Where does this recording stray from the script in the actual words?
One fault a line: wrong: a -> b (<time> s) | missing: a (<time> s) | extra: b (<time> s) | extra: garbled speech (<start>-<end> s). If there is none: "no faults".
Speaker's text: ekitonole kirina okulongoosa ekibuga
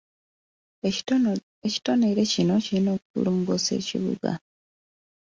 extra: kino (2.3 s)